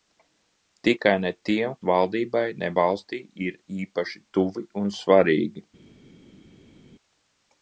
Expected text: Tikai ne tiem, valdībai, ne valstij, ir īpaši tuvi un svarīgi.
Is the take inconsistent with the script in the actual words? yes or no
no